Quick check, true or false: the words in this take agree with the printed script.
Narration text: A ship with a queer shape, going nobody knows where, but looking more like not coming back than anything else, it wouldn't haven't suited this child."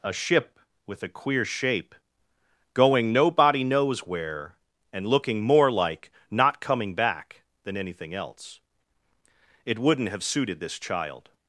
false